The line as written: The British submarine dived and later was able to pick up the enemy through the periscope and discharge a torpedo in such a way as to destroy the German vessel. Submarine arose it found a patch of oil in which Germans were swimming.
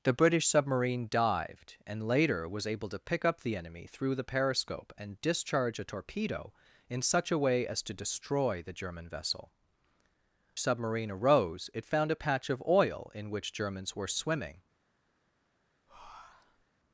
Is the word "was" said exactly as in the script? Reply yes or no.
yes